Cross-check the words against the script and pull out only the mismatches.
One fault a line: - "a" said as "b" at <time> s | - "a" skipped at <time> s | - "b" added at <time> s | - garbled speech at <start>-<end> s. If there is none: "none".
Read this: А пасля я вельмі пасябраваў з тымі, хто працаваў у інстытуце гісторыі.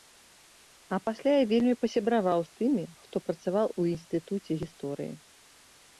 none